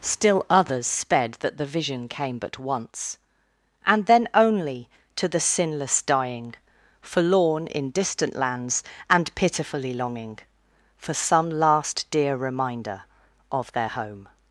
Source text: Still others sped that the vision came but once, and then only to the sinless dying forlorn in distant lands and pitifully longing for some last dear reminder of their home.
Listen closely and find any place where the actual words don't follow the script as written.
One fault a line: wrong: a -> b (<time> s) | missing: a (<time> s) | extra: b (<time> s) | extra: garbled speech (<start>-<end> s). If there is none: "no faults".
no faults